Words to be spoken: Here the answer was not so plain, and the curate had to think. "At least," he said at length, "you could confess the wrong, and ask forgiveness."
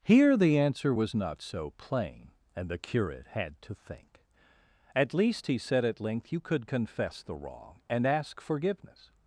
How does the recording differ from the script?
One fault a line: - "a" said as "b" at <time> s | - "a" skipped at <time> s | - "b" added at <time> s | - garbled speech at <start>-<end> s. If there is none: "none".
none